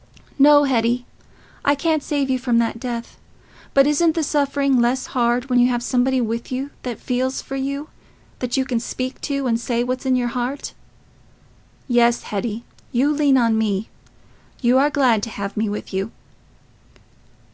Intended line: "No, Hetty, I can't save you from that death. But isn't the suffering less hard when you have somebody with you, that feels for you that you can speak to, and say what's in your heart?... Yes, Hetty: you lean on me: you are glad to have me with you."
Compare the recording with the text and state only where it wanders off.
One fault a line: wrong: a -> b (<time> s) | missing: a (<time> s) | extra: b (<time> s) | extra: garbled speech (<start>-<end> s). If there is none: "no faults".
no faults